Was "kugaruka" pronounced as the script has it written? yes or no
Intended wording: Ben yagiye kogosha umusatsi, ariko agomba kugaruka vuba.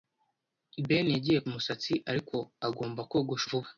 no